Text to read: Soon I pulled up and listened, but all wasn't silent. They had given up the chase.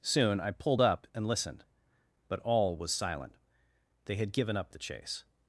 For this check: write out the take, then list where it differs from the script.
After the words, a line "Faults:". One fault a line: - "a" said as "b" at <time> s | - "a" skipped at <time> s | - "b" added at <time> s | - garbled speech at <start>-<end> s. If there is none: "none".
Soon I pulled up and listened, but all was silent. They had given up the chase.
Faults:
- "wasn't" said as "was" at 2.8 s